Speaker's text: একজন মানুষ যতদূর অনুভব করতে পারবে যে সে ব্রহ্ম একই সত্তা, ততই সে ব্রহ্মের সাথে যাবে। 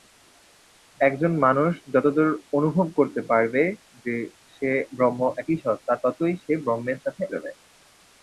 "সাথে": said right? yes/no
yes